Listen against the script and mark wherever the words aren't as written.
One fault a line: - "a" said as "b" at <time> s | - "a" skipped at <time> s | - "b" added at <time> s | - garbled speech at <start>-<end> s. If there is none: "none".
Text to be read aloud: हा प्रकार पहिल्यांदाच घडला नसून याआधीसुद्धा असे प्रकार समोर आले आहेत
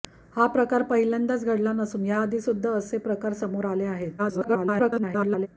- garbled speech at 4.2-5.5 s